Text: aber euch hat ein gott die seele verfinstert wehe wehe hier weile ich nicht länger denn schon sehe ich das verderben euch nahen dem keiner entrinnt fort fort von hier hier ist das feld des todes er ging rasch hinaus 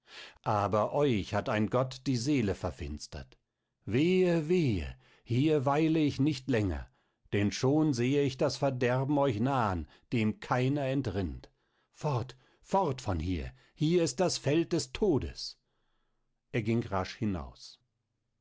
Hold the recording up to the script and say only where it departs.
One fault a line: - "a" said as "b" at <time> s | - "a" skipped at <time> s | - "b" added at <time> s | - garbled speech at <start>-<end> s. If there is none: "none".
none